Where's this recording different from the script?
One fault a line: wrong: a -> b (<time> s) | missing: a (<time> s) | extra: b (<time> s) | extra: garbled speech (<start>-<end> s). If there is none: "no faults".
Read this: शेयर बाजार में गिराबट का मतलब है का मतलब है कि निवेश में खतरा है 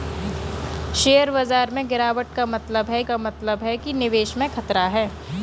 no faults